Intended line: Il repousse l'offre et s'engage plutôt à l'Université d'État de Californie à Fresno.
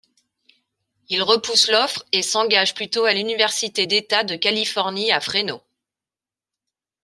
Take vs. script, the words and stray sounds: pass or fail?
pass